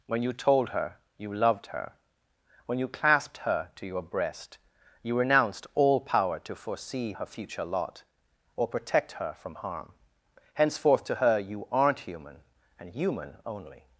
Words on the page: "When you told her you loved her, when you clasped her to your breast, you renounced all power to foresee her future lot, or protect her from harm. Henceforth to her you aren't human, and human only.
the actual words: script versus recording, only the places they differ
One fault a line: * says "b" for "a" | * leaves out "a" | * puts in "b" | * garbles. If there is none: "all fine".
all fine